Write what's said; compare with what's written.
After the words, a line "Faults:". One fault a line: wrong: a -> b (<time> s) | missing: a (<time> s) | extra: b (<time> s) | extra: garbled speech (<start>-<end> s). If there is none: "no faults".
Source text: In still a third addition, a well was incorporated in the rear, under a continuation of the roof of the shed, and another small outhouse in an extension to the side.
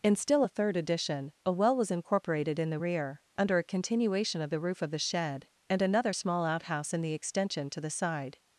In still a third addition, a well was incorporated in the rear, under a continuation of the roof of the shed, and another small outhouse in the extension to the side.
Faults:
wrong: an -> the (7.0 s)